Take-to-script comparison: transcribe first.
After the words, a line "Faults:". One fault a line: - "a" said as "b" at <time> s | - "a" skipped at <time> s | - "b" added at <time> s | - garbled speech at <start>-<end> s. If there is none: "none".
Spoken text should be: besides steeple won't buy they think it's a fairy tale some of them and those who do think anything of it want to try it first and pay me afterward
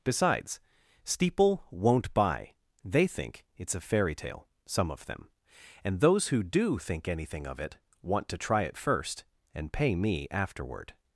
besides steeple won't buy they think it's a fairy tale some of them and those who do think anything of it want to try it first and pay me afterward
Faults:
none